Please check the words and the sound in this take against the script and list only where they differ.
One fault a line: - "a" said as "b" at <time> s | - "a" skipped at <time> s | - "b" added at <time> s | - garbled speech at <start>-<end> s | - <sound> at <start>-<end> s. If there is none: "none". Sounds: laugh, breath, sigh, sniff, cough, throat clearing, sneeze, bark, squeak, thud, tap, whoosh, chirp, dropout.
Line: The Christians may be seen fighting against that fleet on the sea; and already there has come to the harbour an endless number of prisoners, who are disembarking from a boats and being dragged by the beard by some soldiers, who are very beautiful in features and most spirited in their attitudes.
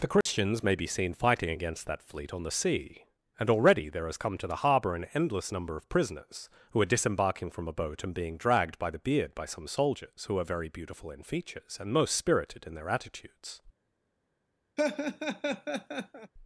- dropout at 0.2-0.3 s
- "boats" said as "boat" at 7.7 s
- laugh at 14.8-16.3 s